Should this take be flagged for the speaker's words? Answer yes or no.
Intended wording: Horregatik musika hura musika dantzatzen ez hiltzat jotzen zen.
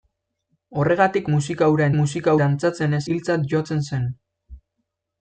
no